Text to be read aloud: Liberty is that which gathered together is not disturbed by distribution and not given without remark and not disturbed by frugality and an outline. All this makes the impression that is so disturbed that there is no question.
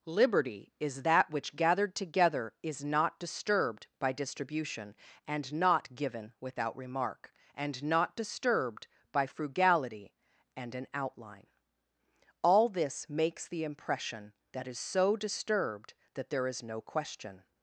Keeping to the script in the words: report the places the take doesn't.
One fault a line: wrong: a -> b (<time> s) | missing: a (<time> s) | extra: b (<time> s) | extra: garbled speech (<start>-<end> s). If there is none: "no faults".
no faults